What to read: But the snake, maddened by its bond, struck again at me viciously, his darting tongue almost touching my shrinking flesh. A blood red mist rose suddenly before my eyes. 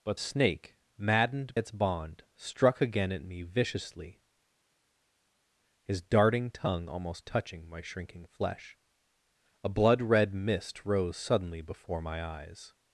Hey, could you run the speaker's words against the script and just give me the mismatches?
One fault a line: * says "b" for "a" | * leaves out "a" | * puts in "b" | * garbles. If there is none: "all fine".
* leaves out "the"
* leaves out "by"